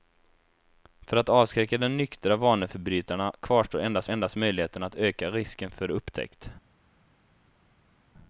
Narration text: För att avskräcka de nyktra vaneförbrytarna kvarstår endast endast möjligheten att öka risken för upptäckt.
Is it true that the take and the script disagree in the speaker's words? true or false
false